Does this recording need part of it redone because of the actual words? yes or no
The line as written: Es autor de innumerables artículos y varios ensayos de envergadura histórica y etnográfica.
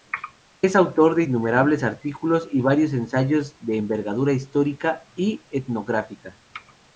no